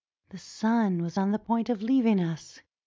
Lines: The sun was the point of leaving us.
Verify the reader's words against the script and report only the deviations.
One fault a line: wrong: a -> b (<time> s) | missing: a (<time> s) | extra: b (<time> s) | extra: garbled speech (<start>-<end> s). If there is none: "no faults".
extra: on (1.2 s)